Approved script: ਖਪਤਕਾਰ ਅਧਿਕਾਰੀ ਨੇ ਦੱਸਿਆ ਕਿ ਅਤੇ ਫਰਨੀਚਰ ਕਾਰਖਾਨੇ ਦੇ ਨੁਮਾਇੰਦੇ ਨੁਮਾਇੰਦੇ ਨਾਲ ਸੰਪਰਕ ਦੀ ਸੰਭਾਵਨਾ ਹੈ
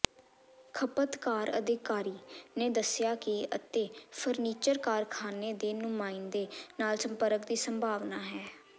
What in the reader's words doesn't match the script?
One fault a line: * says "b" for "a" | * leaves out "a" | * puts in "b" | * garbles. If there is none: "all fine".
* leaves out "ਨੁਮਾਇੰਦੇ"